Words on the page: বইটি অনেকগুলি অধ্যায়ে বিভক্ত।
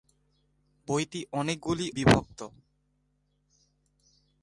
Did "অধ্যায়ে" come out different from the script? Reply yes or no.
yes